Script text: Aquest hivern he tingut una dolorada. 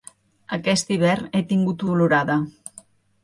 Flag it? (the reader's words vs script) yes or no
yes